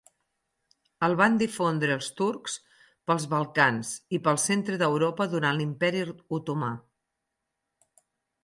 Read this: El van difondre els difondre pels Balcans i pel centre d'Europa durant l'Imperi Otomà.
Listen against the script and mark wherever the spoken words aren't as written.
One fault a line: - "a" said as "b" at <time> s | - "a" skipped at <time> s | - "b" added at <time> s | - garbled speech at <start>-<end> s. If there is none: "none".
- "difondre" said as "turcs" at 2.2 s